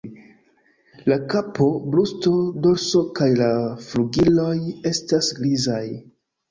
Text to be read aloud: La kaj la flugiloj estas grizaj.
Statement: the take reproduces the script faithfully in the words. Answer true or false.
false